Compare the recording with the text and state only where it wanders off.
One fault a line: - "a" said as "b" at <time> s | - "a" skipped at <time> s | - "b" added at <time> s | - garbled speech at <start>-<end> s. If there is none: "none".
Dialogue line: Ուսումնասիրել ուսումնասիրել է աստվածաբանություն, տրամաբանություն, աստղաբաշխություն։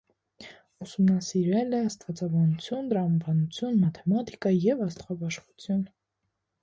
- "ուսումնասիրել" skipped at 1.8 s
- "մաթեմատիկա և" added at 3.9 s